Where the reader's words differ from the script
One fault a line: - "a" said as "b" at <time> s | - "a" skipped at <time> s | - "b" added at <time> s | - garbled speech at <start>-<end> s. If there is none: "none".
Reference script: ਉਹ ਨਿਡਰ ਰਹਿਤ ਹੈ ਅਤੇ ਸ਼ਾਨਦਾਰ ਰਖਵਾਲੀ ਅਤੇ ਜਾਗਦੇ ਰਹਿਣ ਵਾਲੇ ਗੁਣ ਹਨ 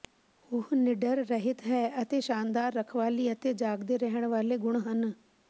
none